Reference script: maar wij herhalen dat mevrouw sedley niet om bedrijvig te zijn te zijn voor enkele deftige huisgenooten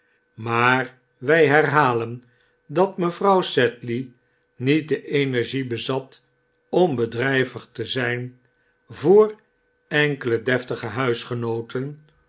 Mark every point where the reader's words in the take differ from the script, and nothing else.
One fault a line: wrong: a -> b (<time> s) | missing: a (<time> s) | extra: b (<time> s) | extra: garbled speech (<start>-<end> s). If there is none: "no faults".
extra: de energie bezat (4.9 s)
missing: te zijn (8.4 s)